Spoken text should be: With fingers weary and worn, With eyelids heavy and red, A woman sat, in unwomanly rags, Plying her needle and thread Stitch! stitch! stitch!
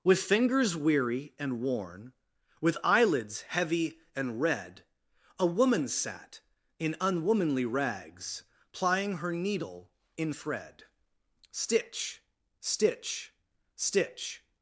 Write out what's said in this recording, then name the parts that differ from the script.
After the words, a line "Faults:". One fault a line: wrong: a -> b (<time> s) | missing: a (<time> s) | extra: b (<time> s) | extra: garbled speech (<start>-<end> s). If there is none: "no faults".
With fingers weary and worn, With eyelids heavy and red, A woman sat, in unwomanly rags, Plying her needle in thread Stitch! stitch! stitch!
Faults:
wrong: and -> in (10.2 s)